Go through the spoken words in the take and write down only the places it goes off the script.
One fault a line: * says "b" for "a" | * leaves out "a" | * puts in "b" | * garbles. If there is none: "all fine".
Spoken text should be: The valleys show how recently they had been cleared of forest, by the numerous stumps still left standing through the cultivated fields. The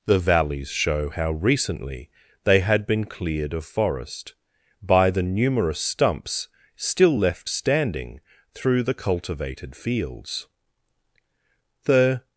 all fine